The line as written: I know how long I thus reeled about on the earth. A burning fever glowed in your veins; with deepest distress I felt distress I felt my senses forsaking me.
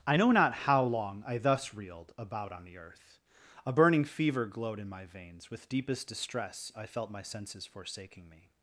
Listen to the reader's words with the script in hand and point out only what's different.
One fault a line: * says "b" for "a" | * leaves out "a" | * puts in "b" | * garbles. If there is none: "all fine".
* puts in "not"
* says "my" for "your"
* leaves out "distress I felt"